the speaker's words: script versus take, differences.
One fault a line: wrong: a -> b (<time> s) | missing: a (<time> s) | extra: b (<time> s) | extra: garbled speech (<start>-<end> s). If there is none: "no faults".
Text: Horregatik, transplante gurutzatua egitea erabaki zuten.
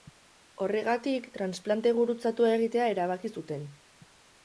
no faults